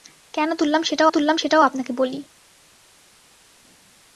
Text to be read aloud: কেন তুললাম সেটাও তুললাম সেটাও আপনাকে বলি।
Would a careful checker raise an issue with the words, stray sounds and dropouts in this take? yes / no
no